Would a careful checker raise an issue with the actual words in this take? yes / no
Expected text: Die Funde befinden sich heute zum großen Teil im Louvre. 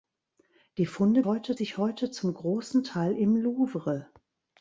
yes